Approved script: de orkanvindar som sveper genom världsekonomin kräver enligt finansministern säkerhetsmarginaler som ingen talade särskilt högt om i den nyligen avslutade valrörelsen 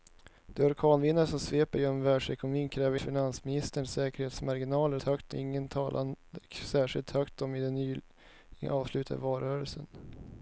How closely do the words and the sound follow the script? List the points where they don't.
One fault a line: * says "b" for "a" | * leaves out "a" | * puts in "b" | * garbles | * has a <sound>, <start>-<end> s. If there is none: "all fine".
* leaves out "enligt"
* says "högt" for "som"